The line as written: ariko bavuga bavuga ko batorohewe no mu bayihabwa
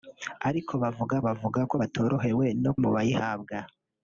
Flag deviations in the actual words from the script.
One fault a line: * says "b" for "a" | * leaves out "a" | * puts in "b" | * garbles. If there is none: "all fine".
all fine